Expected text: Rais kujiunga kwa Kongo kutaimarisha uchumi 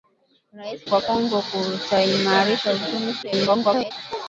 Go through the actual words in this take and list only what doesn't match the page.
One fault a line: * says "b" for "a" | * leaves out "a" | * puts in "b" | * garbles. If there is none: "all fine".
* leaves out "kujiunga"
* garbles